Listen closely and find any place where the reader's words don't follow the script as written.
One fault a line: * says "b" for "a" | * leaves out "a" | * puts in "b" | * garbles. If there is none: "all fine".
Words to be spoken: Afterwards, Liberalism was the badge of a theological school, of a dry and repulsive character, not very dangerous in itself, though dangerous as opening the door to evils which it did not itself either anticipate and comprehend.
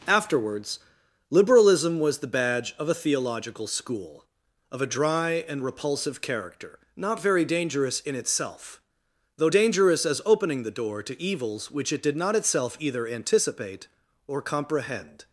* says "or" for "and"